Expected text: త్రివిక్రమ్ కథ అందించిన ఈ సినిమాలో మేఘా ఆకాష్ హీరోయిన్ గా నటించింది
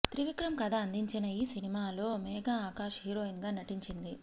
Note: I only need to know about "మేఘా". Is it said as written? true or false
true